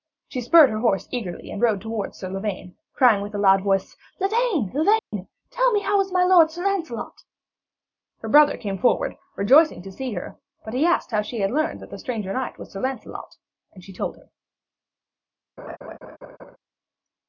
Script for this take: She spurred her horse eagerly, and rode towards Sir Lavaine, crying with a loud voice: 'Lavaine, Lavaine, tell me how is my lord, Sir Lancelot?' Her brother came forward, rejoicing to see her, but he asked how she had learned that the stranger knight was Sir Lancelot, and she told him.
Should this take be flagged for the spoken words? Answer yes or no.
no